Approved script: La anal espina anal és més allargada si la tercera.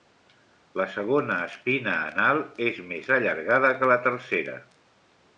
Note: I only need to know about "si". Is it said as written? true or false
false